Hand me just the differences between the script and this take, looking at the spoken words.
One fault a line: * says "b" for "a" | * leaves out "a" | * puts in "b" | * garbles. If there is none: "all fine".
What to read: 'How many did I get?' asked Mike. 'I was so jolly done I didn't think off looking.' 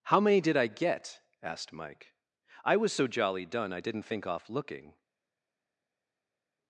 all fine